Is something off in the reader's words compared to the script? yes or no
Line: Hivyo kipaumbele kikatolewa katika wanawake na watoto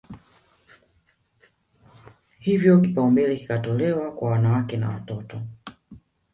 yes